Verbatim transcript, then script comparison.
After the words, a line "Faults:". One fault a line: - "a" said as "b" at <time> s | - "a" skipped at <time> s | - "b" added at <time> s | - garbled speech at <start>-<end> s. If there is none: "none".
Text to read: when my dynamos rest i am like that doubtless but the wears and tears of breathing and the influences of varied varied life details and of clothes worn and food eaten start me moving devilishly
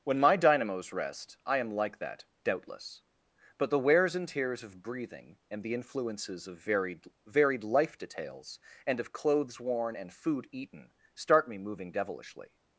when my dynamos rest i am like that doubtless but the wears and tears of breathing and the influences of varied varied life details and of clothes worn and food eaten start me moving devilishly
Faults:
none